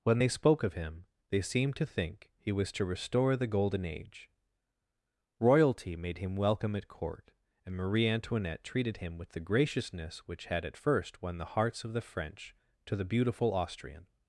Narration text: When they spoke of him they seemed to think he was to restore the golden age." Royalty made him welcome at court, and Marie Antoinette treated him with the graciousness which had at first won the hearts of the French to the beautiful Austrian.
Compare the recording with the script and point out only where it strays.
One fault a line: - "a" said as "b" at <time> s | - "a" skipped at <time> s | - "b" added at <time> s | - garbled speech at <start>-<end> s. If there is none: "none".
none